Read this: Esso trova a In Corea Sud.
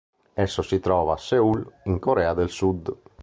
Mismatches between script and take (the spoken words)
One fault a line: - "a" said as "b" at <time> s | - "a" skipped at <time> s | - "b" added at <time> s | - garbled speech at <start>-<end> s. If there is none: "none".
- "si" added at 0.6 s
- "Seul" added at 1.2 s
- "del" added at 2.3 s